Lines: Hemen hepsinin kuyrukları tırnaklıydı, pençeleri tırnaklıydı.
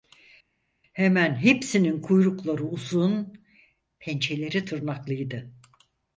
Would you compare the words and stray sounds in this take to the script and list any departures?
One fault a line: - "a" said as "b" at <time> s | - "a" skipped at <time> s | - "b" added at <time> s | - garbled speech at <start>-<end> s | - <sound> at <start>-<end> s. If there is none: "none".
- "tırnaklıydı" said as "uzun" at 2.6 s